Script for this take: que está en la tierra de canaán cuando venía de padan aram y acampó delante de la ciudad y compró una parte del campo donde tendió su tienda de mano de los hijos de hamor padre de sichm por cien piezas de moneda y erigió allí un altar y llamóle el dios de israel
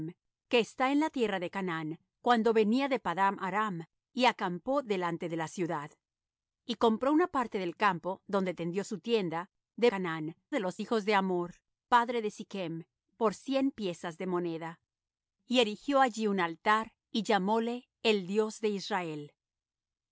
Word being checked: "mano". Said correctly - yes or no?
no